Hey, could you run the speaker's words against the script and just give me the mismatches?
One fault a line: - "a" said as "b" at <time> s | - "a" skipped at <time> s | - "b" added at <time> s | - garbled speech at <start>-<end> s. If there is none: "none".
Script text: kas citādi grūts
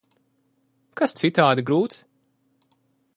none